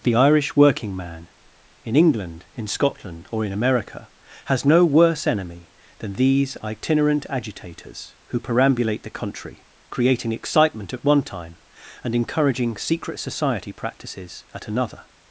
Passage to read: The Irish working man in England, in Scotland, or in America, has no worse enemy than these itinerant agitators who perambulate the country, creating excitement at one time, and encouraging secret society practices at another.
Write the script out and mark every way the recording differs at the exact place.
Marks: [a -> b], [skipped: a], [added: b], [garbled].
The Irish working man in England, in Scotland, or in America, has no worse enemy than these itinerant agitators who perambulate the country, creating excitement at one time, and encouraging secret society practices at another.